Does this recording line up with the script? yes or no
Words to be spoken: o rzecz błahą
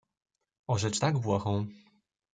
no